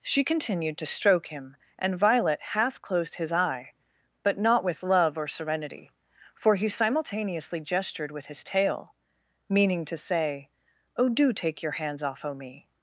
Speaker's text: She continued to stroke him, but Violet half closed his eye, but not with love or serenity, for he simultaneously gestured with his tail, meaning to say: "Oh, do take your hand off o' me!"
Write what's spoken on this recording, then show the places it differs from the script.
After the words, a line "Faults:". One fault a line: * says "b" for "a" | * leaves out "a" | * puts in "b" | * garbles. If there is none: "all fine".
She continued to stroke him, and Violet half closed his eye, but not with love or serenity, for he simultaneously gestured with his tail, meaning to say: "Oh, do take your hands off o' me!"
Faults:
* says "and" for "but"
* says "hands" for "hand"